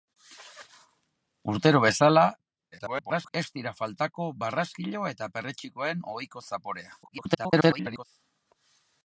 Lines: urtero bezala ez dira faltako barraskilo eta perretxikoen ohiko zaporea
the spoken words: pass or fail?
fail